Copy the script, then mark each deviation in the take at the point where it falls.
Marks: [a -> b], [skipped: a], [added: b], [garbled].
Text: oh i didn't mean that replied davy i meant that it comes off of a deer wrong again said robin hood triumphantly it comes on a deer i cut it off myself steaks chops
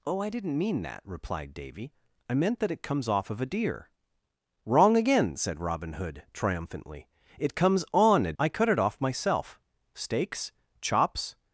oh i didn't mean that replied davy i meant that it comes off of a deer wrong again said robin hood triumphantly it comes on a [skipped: deer] i cut it off myself steaks chops